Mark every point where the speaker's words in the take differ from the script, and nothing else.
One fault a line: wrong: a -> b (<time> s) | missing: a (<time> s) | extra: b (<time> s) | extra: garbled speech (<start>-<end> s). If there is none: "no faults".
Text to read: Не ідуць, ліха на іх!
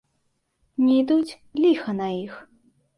no faults